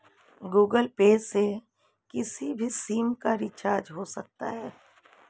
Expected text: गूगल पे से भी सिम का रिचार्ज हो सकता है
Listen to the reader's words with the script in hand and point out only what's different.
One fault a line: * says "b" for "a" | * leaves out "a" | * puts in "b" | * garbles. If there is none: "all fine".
* puts in "किसी"